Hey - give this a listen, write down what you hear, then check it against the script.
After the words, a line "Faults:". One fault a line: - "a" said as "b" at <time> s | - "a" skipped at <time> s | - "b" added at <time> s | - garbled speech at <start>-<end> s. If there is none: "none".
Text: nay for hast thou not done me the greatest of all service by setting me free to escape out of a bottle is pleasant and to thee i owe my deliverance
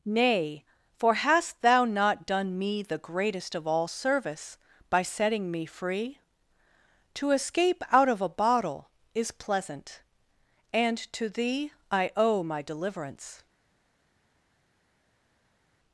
nay for hast thou not done me the greatest of all service by setting me free to escape out of a bottle is pleasant and to thee i owe my deliverance
Faults:
none